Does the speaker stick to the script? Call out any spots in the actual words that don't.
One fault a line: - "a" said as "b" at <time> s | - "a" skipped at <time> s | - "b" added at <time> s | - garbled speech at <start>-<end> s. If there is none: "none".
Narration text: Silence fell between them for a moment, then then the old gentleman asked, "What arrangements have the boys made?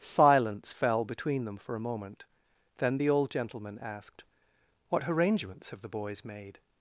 - "then" skipped at 3.0 s